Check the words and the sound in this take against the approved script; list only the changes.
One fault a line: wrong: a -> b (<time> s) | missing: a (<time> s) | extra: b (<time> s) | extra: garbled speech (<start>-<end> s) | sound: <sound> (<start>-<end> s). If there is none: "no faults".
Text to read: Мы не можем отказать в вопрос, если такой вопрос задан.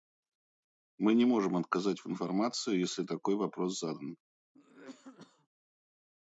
wrong: вопрос -> информации (2.1 s)
sound: cough (4.5-5.5 s)